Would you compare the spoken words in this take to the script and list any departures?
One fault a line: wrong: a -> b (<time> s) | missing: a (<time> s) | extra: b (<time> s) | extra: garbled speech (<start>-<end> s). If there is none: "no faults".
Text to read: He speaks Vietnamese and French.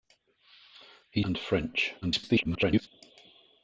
missing: speaks Vietnamese (1.2 s)
extra: garbled speech (2.0-2.9 s)